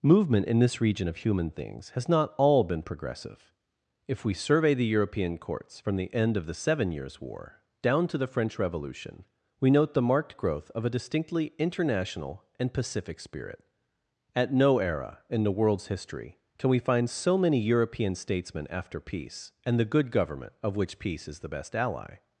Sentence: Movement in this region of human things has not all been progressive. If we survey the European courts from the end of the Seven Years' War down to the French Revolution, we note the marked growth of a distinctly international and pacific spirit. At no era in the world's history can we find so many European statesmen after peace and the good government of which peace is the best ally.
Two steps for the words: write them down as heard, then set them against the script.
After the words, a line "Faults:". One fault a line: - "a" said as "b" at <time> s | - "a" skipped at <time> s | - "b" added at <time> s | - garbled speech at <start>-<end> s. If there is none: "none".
Movement in this region of human things has not all been progressive. If we survey the European courts from the end of the Seven Years' War down to the French Revolution, we note the marked growth of a distinctly international and pacific spirit. At no era in the world's history can we find so many European statesmen after peace and the good government of which peace is the best ally.
Faults:
none